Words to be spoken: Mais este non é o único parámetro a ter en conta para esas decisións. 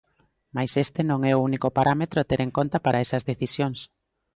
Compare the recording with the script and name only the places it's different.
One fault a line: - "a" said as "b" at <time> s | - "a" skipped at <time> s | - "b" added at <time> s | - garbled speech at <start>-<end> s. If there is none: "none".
none